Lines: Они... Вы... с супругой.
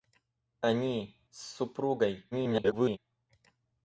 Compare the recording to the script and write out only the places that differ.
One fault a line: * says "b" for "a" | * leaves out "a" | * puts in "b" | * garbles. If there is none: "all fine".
* leaves out "Вы"
* garbles